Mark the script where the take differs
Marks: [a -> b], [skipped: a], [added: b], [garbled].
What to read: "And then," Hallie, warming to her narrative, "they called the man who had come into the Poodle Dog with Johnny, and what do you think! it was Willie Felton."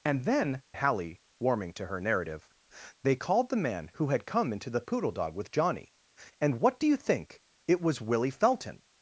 "And then," Hallie, warming to her narrative, "they called the man who had come into the Poodle Dog with Johnny, and what do you think! it was Willie Felton."